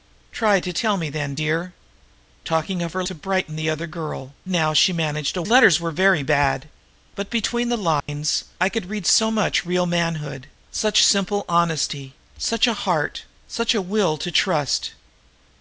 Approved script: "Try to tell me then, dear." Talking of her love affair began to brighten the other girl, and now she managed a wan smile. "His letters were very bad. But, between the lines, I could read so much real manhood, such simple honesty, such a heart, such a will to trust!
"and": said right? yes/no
no